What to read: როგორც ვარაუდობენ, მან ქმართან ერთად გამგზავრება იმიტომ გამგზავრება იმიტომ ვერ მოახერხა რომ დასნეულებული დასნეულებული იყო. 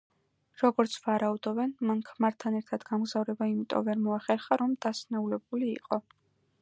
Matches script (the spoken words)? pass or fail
fail